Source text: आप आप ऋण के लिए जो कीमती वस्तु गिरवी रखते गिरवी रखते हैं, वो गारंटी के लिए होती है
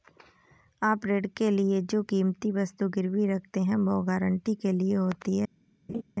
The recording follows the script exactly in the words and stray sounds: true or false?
false